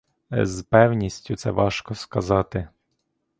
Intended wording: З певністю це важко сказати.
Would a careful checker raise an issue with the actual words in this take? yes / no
no